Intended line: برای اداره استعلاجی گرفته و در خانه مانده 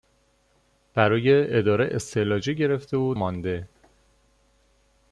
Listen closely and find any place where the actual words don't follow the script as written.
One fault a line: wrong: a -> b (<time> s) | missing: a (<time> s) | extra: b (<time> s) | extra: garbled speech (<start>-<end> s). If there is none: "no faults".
missing: در خانه (3.1 s)